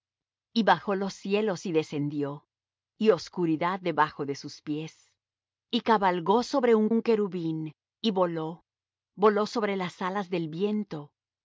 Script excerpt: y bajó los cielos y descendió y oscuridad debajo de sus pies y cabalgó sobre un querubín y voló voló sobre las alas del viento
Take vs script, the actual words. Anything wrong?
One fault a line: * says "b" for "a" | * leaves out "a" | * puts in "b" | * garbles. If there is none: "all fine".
* puts in "un"